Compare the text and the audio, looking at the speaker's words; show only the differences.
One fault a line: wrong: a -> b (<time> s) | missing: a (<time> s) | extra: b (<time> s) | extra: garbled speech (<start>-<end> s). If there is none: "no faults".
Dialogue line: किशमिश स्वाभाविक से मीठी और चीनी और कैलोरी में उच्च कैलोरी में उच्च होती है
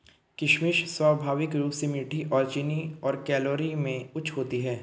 extra: रूप (1.6 s)
missing: कैलोरी में उच्च (4.3 s)